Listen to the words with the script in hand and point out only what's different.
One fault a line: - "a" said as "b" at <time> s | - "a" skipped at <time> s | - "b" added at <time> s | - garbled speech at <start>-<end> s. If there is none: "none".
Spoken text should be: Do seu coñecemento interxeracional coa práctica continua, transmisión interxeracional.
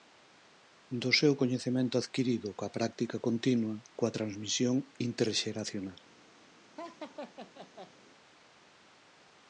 - "interxeracional" said as "adquirido" at 2.0 s
- "coa" added at 4.0 s